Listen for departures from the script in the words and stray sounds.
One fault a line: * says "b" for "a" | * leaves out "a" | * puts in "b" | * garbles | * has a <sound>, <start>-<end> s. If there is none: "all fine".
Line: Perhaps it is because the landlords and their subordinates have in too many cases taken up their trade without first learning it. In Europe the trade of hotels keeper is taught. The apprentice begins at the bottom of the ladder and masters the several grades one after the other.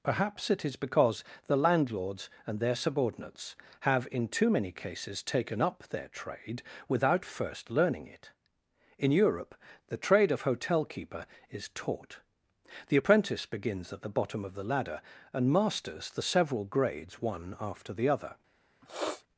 * says "hotel" for "hotels"
* has a sniff, 18.8-19.2 s